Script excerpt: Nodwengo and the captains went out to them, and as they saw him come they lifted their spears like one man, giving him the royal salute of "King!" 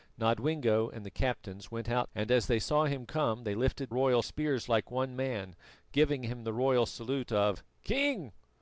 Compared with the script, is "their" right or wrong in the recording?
wrong